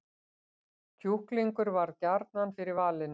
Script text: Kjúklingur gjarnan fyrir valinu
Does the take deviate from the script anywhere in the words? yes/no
yes